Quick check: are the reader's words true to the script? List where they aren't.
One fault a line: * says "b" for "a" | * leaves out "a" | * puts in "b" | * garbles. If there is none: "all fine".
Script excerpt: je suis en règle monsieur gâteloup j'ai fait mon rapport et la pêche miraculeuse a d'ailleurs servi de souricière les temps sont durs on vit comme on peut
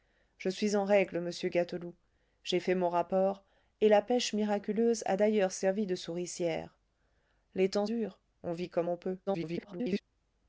* leaves out "sont"
* garbles